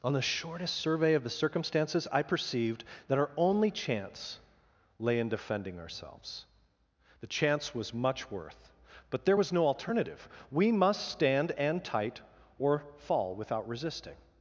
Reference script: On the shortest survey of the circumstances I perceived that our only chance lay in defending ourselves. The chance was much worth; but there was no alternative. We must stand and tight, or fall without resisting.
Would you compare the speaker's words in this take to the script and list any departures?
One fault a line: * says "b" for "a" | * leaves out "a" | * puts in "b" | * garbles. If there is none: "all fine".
all fine